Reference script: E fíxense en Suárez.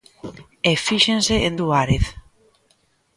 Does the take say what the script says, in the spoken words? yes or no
yes